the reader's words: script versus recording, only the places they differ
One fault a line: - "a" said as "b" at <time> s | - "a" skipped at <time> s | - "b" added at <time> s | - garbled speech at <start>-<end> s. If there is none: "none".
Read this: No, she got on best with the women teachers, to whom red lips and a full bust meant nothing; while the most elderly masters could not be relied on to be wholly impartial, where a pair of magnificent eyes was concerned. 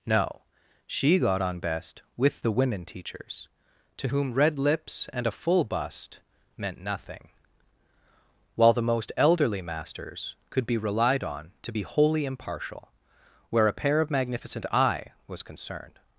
- "not" skipped at 10.6 s
- "eyes" said as "eye" at 14.7 s